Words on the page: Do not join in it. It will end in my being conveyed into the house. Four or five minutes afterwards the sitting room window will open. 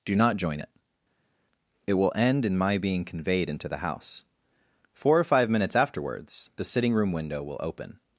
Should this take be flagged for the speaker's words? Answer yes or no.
yes